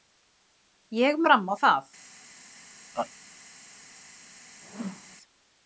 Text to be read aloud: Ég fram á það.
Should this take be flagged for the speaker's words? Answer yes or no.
no